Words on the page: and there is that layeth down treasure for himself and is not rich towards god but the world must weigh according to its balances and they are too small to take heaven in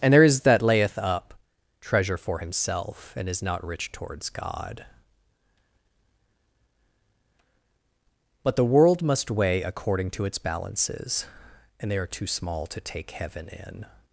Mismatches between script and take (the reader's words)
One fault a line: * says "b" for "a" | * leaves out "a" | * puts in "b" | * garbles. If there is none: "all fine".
* says "up" for "down"